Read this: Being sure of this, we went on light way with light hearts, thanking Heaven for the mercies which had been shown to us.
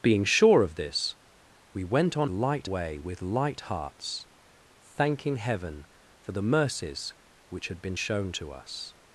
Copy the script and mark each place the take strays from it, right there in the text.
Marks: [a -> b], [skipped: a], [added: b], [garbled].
Being sure of this, we went on light way with light hearts, thanking Heaven for the mercies which had been shown to us.